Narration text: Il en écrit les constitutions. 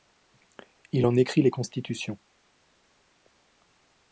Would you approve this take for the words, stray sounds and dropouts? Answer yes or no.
yes